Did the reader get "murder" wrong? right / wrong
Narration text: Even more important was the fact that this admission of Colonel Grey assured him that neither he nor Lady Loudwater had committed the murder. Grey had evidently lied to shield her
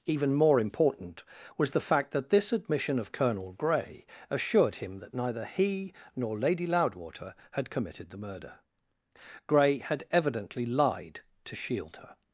right